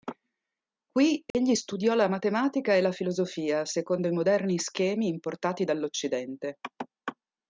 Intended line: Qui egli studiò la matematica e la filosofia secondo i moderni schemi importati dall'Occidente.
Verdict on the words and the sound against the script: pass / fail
fail